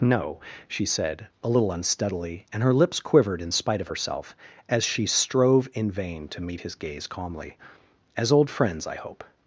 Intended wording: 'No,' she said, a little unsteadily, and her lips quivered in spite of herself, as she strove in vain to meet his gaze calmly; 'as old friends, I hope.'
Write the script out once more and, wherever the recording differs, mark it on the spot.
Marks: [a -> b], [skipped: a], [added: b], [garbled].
'No,' she said, a little unsteadily, and her lips quivered in spite of herself, as she strove in vain to meet his gaze calmly; 'as old friends, I hope.'